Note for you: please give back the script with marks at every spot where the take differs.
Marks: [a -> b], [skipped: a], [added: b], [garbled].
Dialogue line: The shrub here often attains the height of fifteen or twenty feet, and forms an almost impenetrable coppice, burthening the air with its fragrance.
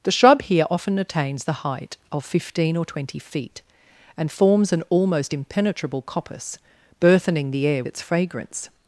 The shrub here often attains the height of fifteen or twenty feet, and forms an almost impenetrable coppice, burthening the air [skipped: with] its fragrance.